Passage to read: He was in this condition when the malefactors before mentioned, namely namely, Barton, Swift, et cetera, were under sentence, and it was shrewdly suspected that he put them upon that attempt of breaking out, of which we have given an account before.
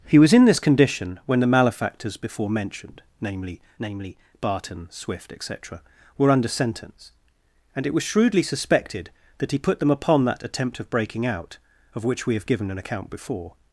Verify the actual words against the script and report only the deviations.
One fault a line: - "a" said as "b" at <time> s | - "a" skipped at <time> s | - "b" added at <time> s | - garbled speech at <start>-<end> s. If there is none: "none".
none